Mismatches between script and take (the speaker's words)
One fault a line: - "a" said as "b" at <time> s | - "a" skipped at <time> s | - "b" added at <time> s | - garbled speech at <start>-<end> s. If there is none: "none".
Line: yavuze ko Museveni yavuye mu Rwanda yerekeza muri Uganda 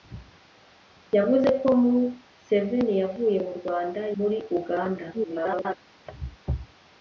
- "yerekeza" skipped at 4.0 s
- garbled speech at 5.1-5.7 s